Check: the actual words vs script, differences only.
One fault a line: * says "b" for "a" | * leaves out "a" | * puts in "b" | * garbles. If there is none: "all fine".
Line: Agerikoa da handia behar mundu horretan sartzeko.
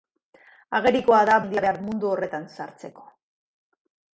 all fine